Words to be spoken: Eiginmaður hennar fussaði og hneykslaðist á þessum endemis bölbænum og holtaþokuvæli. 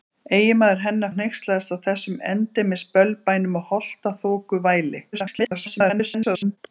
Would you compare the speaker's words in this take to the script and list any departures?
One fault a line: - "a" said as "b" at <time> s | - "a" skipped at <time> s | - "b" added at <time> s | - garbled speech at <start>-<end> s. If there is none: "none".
- "fussaði" skipped at 1.1 s
- garbled speech at 5.1-6.6 s